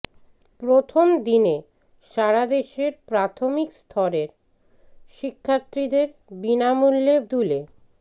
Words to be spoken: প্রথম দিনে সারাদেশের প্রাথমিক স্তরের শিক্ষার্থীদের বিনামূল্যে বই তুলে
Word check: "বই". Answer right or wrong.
wrong